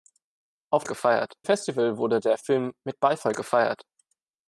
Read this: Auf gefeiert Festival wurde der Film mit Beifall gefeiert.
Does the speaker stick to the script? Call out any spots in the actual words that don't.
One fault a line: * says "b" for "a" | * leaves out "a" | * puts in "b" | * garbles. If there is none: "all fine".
all fine